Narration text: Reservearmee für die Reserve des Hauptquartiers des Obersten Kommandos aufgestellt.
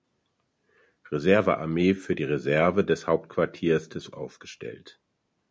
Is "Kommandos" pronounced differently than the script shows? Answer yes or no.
yes